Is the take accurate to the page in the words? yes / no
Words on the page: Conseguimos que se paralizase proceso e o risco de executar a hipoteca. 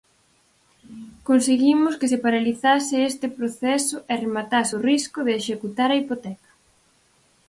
no